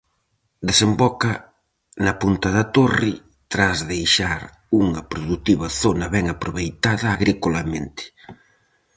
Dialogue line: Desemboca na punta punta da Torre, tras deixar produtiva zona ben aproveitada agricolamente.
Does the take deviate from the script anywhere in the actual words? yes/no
yes